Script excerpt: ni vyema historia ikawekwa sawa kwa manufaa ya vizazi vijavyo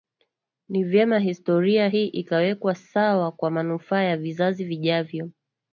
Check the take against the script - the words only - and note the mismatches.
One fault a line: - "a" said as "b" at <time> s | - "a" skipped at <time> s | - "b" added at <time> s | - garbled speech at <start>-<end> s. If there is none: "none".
- "hii" added at 1.9 s